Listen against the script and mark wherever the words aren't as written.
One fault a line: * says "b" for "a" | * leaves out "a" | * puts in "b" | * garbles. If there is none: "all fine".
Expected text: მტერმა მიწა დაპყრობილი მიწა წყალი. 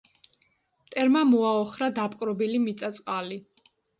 * says "მოაოხრა" for "მიწა"